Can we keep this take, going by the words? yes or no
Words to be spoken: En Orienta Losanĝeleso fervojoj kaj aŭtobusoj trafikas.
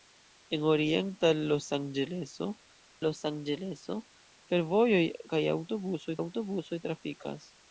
no